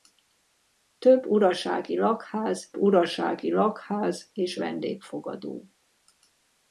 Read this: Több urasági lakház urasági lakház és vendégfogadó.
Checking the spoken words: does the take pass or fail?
pass